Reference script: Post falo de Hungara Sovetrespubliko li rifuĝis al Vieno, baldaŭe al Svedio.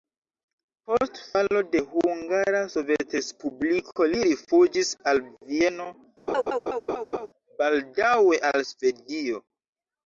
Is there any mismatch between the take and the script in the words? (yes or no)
no